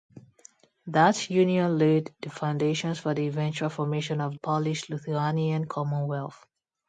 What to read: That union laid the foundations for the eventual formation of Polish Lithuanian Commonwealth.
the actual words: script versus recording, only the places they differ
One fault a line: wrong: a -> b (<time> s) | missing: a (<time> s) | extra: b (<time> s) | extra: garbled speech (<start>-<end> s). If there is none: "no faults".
no faults